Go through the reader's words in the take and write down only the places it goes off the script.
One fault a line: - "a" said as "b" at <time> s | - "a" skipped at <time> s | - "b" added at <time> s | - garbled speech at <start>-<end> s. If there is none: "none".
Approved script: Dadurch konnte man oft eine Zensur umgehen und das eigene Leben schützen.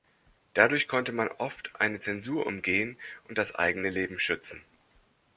none